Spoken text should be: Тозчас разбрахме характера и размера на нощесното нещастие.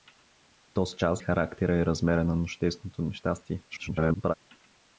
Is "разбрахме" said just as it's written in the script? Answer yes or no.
no